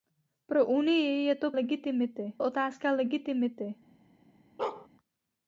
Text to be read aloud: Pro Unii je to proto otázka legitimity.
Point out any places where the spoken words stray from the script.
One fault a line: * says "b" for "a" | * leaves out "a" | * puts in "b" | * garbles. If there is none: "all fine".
* says "legitimity" for "proto"